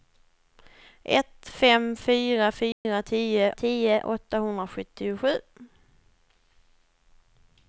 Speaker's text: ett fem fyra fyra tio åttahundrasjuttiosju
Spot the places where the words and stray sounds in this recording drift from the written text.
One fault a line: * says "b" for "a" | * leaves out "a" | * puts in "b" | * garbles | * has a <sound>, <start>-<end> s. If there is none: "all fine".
* has a dropout, 2.7-2.8 s
* puts in "tio"